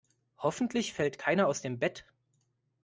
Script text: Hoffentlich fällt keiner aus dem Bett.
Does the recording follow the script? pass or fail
pass